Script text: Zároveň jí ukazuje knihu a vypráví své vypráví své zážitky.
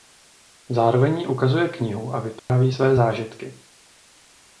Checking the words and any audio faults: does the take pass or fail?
fail